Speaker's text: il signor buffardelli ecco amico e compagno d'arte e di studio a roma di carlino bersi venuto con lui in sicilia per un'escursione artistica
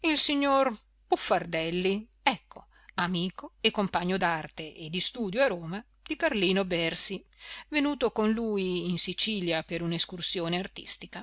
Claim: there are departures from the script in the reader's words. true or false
false